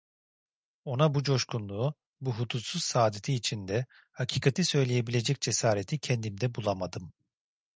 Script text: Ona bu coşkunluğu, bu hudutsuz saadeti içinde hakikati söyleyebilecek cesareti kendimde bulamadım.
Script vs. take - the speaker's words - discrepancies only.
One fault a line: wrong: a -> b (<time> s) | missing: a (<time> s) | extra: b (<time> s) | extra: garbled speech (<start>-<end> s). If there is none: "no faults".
no faults